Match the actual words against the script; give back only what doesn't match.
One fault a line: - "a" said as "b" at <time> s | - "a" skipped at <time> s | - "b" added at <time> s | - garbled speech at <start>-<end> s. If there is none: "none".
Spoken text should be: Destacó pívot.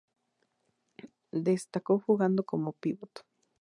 - "jugando como" added at 2.0 s